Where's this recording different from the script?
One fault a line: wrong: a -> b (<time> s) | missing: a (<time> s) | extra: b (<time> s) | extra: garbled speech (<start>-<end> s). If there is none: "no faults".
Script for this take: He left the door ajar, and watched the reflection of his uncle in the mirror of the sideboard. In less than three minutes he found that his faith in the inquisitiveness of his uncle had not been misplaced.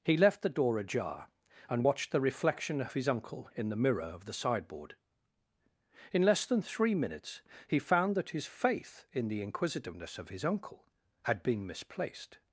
missing: not (11.4 s)